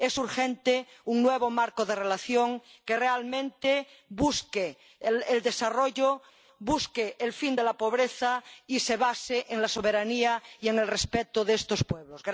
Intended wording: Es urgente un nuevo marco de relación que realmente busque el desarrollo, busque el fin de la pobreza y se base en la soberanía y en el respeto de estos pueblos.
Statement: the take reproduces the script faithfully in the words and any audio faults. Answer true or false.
true